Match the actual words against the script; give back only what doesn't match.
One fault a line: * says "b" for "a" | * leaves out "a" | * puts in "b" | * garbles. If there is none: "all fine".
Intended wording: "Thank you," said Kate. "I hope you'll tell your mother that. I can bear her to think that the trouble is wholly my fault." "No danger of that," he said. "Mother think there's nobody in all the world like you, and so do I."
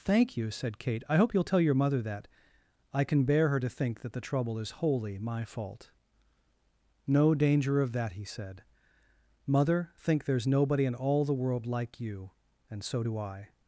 all fine